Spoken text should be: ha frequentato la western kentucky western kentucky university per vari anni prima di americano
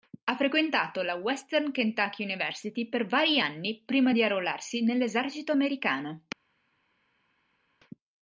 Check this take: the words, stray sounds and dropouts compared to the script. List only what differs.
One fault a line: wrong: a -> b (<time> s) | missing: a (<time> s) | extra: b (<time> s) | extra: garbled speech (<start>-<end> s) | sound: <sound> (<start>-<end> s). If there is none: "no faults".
missing: western kentucky (2.2 s)
extra: arruolarsi nell'esercito (4.2 s)